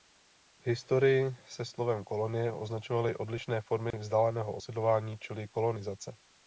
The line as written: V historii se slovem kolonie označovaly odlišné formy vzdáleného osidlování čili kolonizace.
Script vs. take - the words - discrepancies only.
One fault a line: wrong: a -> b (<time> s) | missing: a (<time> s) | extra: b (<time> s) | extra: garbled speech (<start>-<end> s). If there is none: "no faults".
no faults